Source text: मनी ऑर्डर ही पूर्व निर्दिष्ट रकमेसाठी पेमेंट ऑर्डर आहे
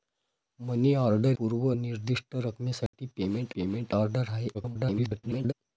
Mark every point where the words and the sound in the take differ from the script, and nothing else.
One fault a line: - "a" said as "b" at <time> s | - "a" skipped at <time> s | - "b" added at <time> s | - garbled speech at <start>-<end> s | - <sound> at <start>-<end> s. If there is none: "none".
- "ही" skipped at 1.4 s
- dropout at 2.9-2.9 s
- "पेमेंट" added at 3.5 s
- garbled speech at 4.5-5.5 s